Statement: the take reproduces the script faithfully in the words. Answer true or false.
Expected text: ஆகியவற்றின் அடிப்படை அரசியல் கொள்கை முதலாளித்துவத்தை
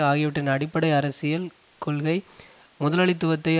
true